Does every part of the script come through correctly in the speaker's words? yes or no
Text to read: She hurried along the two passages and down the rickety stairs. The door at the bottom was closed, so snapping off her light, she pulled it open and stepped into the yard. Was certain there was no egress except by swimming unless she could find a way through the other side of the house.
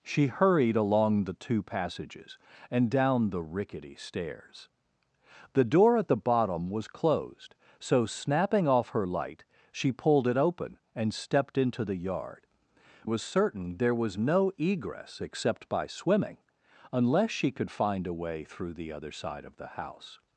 yes